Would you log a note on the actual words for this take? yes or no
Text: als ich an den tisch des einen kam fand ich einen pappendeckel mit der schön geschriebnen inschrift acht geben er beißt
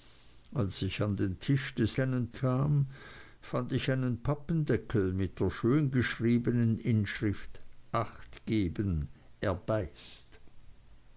no